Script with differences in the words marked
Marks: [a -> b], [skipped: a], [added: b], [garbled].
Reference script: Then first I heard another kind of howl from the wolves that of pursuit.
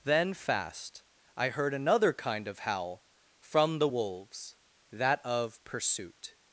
Then [first -> fast] I heard another kind of howl from the wolves that of pursuit.